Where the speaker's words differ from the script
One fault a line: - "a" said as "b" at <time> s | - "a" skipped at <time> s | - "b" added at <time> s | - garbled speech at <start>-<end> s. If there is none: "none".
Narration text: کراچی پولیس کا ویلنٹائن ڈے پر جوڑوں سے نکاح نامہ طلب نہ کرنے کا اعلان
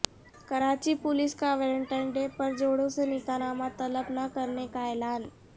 none